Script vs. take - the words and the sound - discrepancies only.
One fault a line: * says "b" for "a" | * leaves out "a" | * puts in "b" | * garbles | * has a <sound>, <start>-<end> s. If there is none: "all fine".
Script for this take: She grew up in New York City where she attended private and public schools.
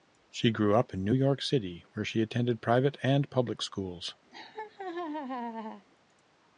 * has a laugh, 4.3-5.9 s